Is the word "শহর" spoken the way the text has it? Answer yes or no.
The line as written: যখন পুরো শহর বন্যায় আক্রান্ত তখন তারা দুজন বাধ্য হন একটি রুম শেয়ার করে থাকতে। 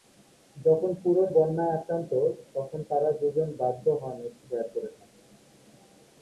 no